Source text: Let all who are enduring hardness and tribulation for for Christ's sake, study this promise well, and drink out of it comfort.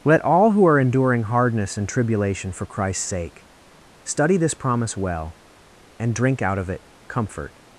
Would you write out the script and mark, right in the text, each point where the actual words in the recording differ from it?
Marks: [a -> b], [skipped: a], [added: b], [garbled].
Let all who are enduring hardness and tribulation for [skipped: for] Christ's sake, study this promise well, and drink out of it comfort.